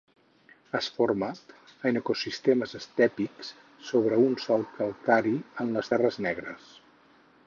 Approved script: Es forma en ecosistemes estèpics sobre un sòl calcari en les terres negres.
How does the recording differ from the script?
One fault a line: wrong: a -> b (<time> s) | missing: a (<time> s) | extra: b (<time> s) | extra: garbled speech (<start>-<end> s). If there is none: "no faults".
no faults